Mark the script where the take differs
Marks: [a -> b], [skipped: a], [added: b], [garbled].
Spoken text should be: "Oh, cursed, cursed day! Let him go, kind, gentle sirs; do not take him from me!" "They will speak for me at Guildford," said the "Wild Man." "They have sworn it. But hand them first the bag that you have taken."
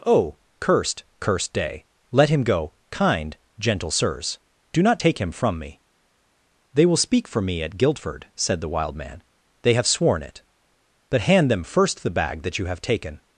"Oh, cursed, cursed day! Let him go, kind, gentle sirs; do not take him from me!" "They will speak for me at Guildford," said the "Wild Man." "They have sworn it. But hand them first the bag that you have taken."